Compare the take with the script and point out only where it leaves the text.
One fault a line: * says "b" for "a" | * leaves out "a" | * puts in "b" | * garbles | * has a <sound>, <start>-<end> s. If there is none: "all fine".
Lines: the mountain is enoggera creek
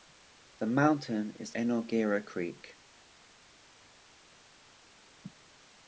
all fine